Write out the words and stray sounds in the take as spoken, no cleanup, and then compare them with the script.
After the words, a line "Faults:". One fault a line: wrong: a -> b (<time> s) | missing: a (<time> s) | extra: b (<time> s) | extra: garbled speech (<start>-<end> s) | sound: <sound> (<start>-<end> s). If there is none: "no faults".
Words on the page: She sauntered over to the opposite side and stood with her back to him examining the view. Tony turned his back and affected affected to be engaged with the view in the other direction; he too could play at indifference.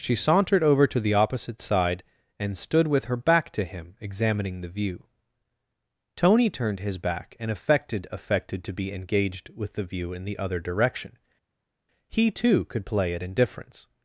She sauntered over to the opposite side and stood with her back to him examining the view. Tony turned his back and affected affected to be engaged with the view in the other direction; he too could play at indifference.
Faults:
no faults